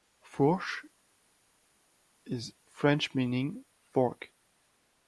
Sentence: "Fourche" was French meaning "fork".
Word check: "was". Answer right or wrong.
wrong